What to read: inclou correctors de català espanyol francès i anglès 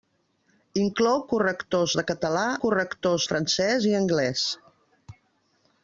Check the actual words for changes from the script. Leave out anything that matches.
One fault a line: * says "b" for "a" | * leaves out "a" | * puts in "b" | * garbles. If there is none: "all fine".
* says "correctors" for "espanyol"